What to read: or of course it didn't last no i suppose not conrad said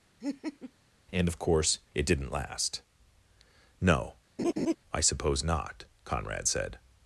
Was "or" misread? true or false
true